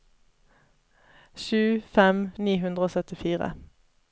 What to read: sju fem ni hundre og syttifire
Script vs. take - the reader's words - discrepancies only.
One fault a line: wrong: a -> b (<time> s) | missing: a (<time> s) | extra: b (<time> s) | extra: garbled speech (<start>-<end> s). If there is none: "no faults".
no faults